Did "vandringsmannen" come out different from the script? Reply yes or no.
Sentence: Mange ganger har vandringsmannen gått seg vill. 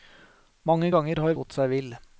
yes